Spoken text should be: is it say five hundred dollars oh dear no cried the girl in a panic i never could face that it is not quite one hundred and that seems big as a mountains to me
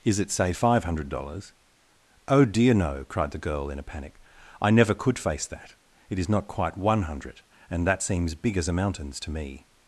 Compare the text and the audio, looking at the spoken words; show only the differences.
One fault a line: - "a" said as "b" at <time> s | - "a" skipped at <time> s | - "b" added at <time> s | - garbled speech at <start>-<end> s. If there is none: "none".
none